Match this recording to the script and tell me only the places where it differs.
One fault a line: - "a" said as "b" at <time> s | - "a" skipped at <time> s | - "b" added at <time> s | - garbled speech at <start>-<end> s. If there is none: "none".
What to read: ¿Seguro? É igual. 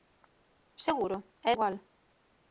none